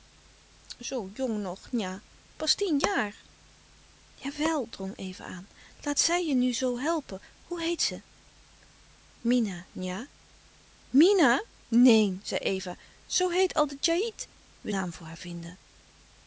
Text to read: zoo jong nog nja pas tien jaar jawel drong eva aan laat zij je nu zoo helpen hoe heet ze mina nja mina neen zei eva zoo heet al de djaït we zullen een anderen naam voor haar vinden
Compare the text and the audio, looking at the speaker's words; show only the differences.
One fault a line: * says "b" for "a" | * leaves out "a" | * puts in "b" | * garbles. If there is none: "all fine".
* leaves out "zullen een anderen"